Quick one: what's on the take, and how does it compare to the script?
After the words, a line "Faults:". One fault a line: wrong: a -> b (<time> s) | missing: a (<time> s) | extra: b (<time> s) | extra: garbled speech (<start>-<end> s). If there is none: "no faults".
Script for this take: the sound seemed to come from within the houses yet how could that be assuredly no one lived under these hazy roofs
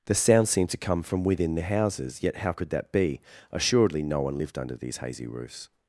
the sound seemed to come from within the houses yet how could that be assuredly no one lived under these hazy roofs
Faults:
no faults